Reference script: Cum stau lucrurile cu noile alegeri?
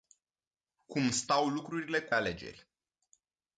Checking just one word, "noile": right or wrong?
wrong